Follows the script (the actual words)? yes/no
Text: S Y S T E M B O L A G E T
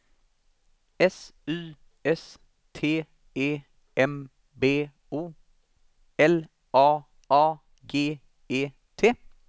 no